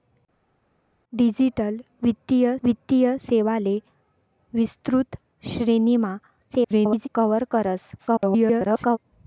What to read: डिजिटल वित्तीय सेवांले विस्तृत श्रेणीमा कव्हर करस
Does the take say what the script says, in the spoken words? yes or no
no